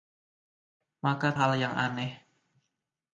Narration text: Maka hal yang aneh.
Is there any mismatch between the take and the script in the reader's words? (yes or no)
no